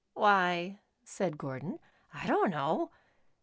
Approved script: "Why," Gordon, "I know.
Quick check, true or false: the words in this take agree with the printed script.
false